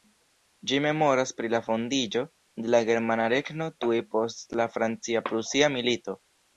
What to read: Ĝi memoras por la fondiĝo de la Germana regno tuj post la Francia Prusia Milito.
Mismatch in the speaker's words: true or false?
true